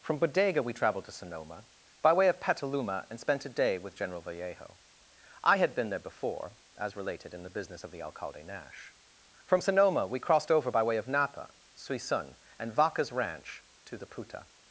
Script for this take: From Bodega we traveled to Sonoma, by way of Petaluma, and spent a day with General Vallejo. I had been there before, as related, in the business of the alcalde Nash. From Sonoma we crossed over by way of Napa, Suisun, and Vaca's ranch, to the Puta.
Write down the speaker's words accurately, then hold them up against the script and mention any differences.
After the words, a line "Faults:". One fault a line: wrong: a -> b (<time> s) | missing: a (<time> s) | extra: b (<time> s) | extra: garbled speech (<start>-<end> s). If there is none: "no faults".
From Bodega we traveled to Sonoma, by way of Petaluma, and spent a day with General Vallejo. I had been there before, as related, in the business of the alcalde Nash. From Sonoma we crossed over by way of Napa, Suisun, and Vaca's ranch, to the Puta.
Faults:
no faults